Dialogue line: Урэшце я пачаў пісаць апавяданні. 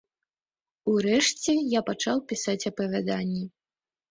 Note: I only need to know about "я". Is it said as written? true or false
true